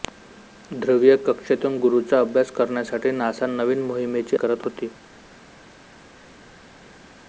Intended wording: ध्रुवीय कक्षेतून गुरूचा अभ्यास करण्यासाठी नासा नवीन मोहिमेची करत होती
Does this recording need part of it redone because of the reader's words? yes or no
no